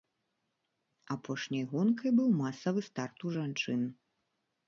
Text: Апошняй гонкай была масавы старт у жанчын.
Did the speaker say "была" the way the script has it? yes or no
no